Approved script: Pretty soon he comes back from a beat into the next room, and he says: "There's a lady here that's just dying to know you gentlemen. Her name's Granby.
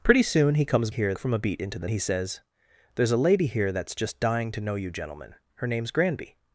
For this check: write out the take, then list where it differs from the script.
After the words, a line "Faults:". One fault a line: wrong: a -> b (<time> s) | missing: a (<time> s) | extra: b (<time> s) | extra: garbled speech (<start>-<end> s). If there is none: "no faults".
Pretty soon he comes here from a beat into the he says: "There's a lady here that's just dying to know you gentlemen. Her name's Granby.
Faults:
wrong: back -> here (0.9 s)
missing: next room and (1.9 s)